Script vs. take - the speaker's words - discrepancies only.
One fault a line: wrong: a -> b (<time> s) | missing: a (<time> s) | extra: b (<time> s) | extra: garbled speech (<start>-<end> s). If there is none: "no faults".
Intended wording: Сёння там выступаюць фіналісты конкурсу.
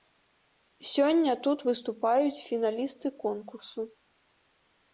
wrong: там -> тут (1.5 s)